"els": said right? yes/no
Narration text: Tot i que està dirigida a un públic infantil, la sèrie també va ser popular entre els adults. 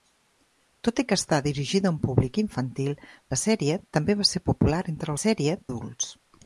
no